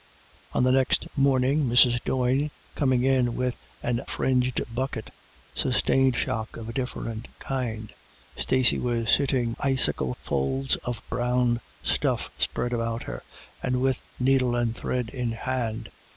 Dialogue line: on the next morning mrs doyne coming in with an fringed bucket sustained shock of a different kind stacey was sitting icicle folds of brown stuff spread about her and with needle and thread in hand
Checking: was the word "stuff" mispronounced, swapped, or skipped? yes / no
no